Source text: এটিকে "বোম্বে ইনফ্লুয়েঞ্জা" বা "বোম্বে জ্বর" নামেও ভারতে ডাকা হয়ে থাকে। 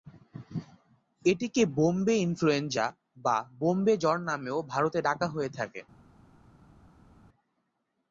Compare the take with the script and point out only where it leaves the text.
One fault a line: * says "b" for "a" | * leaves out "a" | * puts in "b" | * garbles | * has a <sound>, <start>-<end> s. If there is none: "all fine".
all fine